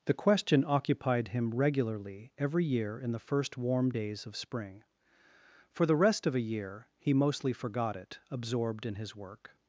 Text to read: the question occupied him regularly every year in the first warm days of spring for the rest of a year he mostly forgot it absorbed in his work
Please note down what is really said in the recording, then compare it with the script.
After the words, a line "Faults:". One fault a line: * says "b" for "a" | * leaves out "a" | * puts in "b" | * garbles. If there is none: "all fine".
the question occupied him regularly every year in the first warm days of spring for the rest of a year he mostly forgot it absorbed in his work
Faults:
all fine